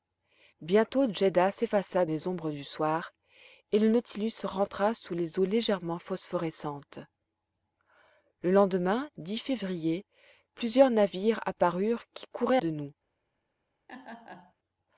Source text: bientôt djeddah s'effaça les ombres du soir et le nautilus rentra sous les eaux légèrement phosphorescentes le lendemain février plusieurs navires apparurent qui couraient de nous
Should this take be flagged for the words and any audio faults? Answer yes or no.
yes